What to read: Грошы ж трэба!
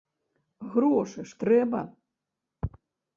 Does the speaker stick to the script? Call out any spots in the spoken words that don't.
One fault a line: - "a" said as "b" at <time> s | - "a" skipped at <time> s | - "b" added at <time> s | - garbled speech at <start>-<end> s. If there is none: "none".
none